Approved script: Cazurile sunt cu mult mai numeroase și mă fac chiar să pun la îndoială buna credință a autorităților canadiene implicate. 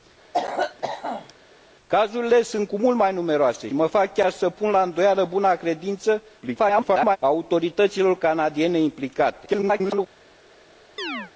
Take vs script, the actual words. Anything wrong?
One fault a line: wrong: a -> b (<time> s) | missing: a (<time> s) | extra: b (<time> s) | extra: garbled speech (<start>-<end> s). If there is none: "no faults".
missing: și (3.7 s)
extra: garbled speech (6.4-7.2 s)
extra: garbled speech (9.5-10.1 s)